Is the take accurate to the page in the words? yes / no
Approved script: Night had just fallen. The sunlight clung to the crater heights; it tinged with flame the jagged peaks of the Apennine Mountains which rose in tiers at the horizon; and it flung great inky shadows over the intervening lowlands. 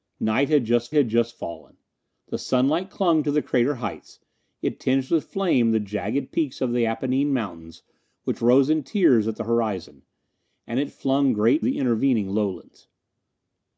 no